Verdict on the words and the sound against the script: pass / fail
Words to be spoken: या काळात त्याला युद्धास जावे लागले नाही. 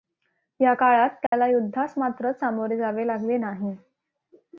fail